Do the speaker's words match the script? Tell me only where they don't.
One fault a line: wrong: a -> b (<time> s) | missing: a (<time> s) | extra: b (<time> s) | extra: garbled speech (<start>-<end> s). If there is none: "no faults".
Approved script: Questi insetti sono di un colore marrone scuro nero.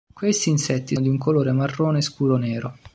missing: sono (0.9 s)